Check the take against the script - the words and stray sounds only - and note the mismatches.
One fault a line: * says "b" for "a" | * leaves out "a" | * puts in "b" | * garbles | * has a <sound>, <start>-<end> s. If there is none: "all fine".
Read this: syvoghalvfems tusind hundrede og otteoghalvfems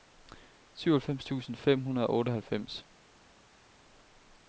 * puts in "fem"